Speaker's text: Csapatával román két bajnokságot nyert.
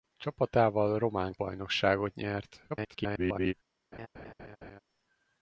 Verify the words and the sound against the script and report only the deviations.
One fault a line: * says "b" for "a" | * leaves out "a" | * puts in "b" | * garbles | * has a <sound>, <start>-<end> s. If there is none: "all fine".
* leaves out "két"
* garbles
* has a laugh, 3.9-4.8 s